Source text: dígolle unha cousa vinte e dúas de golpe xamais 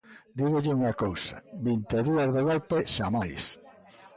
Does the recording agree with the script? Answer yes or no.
yes